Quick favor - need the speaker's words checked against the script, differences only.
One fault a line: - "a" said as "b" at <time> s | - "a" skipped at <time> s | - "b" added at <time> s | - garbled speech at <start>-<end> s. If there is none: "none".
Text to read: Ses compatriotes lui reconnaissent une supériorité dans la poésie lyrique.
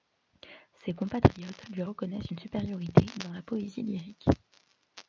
none